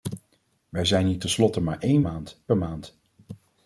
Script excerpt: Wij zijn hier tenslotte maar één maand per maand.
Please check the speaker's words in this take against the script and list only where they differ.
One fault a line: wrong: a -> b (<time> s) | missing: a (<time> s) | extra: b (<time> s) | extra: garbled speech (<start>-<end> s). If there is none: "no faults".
no faults